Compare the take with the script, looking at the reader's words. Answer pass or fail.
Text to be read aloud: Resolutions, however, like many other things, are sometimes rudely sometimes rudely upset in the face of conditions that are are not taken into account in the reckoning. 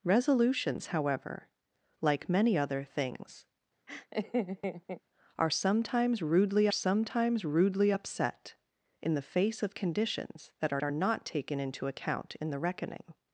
pass